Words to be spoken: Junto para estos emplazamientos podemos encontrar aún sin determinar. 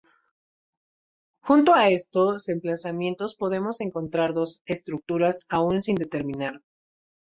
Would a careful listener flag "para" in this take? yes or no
yes